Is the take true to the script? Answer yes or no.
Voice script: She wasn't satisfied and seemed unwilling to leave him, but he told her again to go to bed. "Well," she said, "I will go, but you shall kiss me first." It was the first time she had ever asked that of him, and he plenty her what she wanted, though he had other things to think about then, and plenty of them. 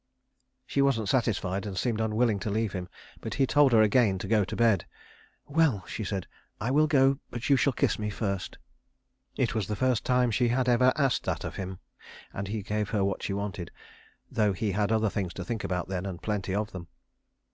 no